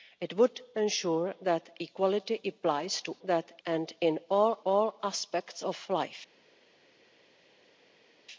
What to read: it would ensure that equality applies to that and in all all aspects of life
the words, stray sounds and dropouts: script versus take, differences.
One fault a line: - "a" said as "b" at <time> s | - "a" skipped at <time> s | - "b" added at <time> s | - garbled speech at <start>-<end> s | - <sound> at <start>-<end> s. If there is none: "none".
none